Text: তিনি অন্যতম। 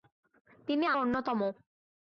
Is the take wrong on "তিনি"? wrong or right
right